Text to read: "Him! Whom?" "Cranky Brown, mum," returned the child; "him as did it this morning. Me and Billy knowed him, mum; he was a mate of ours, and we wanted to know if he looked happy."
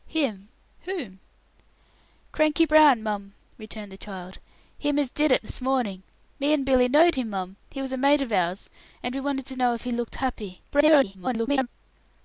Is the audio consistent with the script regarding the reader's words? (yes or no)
no